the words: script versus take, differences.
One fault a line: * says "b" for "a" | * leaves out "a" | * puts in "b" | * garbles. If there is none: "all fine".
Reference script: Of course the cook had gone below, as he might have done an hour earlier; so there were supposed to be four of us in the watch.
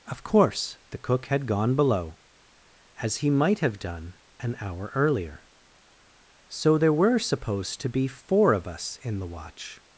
all fine